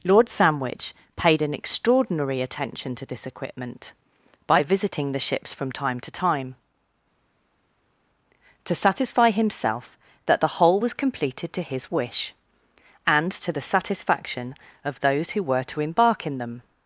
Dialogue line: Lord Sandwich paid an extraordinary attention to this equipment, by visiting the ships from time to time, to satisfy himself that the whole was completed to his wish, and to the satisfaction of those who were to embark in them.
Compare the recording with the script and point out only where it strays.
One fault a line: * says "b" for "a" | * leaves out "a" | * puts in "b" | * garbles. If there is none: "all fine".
all fine